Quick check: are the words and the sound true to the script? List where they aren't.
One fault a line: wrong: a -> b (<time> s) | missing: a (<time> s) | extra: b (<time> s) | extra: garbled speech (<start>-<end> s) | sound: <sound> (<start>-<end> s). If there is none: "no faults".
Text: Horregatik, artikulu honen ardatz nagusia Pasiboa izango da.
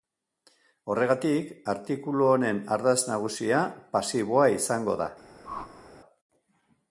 sound: whoosh (5.4-5.9 s)